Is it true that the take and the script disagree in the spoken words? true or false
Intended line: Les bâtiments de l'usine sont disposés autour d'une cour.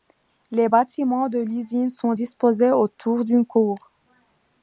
false